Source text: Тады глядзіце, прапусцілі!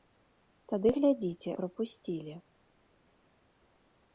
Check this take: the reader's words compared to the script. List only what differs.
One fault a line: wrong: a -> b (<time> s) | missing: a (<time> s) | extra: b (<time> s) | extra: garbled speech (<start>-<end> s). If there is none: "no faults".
no faults